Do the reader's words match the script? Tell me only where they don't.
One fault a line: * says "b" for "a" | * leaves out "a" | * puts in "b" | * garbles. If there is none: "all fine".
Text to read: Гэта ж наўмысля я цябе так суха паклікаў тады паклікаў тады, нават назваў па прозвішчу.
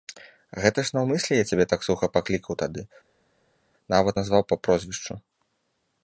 * leaves out "паклікаў тады"